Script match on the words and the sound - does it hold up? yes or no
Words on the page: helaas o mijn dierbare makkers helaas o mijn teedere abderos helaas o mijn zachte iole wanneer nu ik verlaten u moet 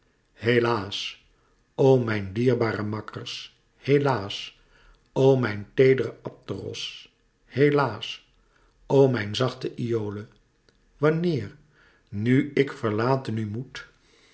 yes